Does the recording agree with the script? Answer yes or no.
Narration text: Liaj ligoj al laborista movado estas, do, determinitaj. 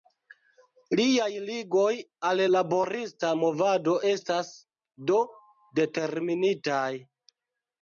yes